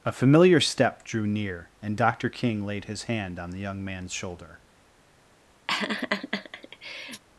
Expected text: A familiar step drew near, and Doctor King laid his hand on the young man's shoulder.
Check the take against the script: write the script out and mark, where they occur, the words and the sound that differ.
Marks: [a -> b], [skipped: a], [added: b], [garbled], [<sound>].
A familiar step drew near, and Doctor King laid his hand on the young man's shoulder. [laugh]